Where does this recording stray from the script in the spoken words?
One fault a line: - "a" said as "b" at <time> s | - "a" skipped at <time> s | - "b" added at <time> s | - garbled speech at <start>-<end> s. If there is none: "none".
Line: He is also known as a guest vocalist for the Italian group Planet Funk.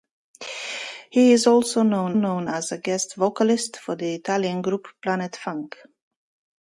- "known" added at 2.1 s